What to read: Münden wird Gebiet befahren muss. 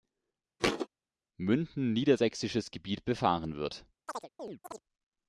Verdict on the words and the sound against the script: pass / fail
fail